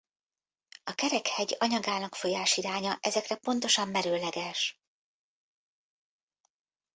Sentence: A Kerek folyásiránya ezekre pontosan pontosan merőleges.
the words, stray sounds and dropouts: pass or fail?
fail